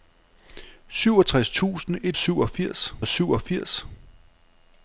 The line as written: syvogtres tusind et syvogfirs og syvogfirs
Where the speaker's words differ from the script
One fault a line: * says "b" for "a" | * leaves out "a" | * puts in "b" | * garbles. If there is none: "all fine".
all fine